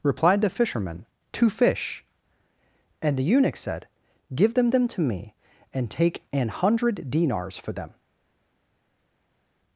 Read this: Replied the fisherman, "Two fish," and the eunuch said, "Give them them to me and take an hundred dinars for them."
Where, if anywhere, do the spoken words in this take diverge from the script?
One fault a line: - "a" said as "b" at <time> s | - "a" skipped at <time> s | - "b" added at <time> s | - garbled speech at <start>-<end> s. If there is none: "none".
none